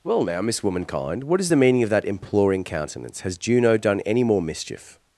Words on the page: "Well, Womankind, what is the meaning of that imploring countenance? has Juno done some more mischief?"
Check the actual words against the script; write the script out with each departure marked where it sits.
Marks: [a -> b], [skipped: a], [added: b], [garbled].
"Well, [added: now Miss] Womankind, what is the meaning of that imploring countenance? has Juno done [some -> any] more mischief?"